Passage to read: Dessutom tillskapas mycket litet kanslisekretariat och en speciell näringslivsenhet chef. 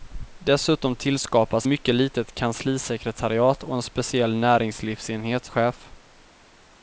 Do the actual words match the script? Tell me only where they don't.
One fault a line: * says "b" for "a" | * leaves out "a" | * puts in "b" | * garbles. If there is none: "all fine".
all fine